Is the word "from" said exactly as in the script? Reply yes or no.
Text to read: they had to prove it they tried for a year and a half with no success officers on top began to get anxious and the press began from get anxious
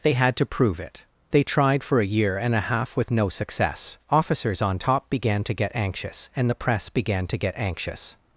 no